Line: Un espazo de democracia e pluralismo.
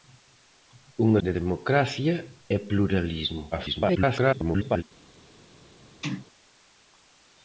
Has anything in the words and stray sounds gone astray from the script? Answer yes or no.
yes